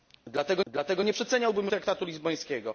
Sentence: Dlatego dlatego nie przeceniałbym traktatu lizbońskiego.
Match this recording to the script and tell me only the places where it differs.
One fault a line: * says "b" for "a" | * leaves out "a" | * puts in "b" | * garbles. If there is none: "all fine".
all fine